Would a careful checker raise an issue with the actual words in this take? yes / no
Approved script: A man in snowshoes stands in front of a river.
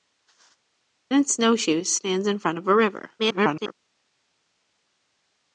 yes